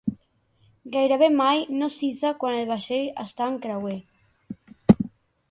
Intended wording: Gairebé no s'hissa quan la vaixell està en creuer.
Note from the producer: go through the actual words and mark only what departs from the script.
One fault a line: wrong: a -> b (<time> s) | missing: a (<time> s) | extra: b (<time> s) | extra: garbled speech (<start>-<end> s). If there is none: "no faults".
extra: mai (1.4 s)
wrong: la -> el (2.6 s)